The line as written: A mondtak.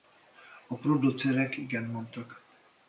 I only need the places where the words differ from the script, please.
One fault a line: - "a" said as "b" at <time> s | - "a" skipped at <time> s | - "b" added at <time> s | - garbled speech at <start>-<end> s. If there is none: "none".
- "producerek igent" added at 0.8 s